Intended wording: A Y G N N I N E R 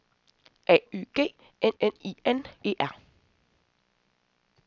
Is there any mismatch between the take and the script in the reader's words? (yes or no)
no